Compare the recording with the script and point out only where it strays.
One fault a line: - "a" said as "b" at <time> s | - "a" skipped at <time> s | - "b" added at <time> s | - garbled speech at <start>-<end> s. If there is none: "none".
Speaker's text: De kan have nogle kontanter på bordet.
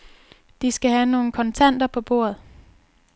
- "kan" said as "skal" at 0.7 s